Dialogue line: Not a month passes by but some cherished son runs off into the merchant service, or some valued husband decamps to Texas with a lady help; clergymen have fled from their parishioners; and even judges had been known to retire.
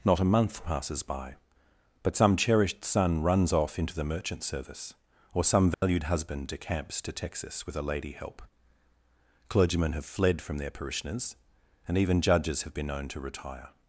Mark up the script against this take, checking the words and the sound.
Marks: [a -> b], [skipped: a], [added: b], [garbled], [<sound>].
Not a month passes by but some cherished son runs off into the merchant service, or some valued [dropout] husband decamps to Texas with a lady help; clergymen have fled from their parishioners; and even judges [had -> have] been known to retire.